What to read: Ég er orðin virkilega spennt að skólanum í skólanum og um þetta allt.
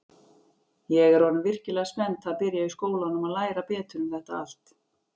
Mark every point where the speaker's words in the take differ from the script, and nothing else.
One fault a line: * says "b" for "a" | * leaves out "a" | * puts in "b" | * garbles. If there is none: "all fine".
* says "byrja" for "skólanum"
* puts in "læra betur"